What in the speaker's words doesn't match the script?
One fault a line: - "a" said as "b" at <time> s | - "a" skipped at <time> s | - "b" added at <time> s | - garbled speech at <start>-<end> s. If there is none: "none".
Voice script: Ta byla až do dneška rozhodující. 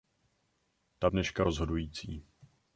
- "byla až do" skipped at 1.1 s